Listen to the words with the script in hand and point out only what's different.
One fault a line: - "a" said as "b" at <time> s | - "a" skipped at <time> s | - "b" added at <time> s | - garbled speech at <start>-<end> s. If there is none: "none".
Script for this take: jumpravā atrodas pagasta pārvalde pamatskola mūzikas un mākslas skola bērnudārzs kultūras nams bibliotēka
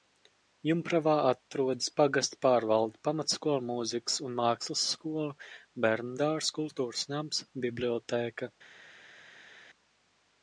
none